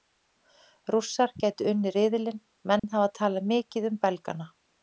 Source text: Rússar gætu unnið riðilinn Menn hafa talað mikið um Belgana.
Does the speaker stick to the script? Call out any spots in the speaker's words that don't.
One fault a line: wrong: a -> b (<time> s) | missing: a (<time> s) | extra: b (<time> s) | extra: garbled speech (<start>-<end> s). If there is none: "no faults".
no faults